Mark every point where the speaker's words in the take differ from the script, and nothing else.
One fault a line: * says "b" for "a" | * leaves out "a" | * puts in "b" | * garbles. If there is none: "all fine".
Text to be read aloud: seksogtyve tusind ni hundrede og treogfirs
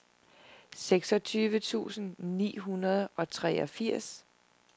all fine